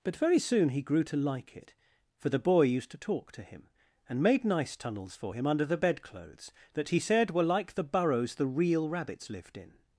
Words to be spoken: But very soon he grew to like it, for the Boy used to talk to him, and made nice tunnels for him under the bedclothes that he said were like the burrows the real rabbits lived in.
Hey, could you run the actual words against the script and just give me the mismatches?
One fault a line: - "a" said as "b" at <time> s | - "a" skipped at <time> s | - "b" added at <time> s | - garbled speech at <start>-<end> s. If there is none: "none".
none